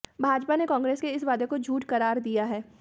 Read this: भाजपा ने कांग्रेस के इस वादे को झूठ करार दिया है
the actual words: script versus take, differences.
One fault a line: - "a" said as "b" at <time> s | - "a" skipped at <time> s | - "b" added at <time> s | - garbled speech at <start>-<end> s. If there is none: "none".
none